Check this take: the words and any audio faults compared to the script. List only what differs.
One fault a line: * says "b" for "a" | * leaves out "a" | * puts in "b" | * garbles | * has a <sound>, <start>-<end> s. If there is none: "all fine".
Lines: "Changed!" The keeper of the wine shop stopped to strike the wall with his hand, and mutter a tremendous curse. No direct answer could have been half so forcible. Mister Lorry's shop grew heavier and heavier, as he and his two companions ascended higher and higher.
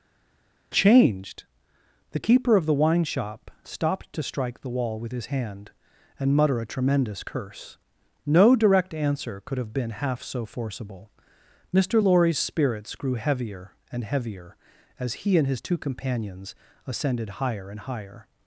* says "spirits" for "shop"